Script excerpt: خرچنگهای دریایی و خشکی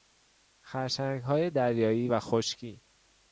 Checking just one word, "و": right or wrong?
right